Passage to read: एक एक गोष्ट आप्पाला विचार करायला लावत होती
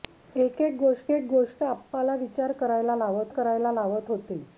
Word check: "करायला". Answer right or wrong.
right